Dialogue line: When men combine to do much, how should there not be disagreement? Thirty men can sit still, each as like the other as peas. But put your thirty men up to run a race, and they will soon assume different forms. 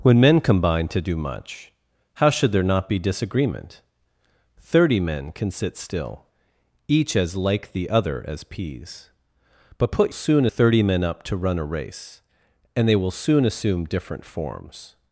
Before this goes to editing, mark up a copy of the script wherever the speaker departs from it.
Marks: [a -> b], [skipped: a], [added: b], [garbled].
When men combine to do much, how should there not be disagreement? Thirty men can sit still, each as like the other as peas. But put [your -> soon] thirty men up to run a race, and they will soon assume different forms.